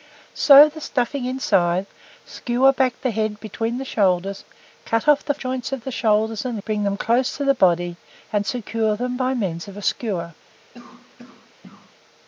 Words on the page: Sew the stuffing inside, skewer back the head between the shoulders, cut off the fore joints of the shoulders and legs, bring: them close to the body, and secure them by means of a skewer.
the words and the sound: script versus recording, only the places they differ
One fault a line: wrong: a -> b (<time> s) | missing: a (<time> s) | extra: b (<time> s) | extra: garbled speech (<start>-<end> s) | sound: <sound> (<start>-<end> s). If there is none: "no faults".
missing: fore (5.3 s)
missing: legs (6.6 s)
sound: cough (10.7-11.9 s)